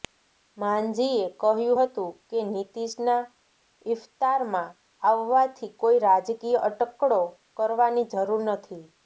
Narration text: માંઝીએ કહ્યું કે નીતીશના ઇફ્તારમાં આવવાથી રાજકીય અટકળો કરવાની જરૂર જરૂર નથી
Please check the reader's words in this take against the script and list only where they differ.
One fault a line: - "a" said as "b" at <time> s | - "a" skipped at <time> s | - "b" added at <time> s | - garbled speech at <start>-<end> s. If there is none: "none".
- "હતું" added at 1.8 s
- "કોઈ" added at 5.8 s
- "જરૂર" skipped at 8.5 s